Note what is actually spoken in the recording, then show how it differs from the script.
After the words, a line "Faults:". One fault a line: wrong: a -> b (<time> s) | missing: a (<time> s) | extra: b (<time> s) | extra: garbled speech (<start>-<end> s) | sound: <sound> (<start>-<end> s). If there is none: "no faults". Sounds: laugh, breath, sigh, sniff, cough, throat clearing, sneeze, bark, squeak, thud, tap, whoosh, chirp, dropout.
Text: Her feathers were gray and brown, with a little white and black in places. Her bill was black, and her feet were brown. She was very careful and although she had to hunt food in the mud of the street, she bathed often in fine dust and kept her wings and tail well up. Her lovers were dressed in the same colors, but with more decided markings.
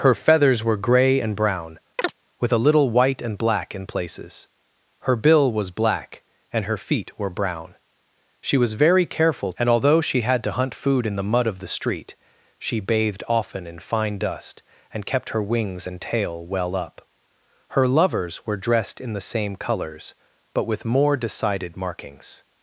Her feathers were gray and brown, with a little white and black in places. Her bill was black, and her feet were brown. She was very careful and although she had to hunt food in the mud of the street, she bathed often in fine dust and kept her wings and tail well up. Her lovers were dressed in the same colors, but with more decided markings.
Faults:
sound: chirp (2.0-2.1 s)